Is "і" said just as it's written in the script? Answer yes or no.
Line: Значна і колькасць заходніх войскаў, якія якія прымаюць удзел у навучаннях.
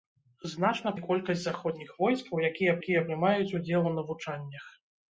yes